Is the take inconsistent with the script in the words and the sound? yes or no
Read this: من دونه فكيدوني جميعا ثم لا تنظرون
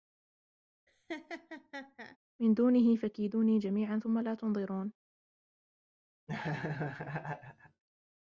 yes